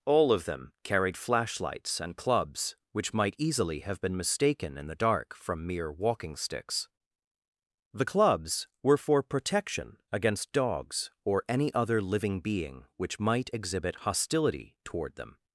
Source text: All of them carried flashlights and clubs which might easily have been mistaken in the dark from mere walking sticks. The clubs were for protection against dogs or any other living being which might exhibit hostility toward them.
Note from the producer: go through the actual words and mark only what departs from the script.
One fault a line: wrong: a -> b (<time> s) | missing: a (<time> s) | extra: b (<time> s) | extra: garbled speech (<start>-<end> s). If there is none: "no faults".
no faults